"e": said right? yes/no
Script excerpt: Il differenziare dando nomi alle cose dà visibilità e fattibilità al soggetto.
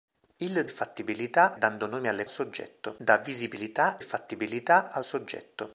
no